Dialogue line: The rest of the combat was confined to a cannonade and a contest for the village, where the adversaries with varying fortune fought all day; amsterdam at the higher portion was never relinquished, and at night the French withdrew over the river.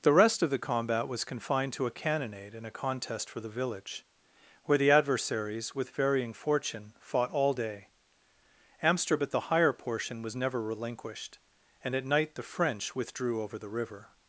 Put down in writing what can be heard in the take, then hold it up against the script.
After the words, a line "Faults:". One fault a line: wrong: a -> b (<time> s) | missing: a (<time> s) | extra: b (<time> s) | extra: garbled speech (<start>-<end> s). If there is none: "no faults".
The rest of the combat was confined to a cannonade and a contest for the village, where the adversaries with varying fortune fought all day; amsterdam at the higher portion was never relinquished, and at night the French withdrew over the river.
Faults:
no faults